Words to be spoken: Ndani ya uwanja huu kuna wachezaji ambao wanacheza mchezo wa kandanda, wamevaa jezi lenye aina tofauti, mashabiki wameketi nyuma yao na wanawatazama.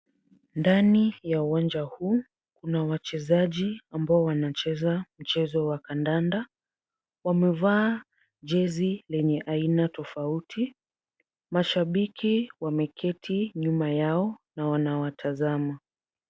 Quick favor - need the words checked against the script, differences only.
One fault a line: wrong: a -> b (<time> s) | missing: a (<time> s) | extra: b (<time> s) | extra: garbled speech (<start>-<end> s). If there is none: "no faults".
no faults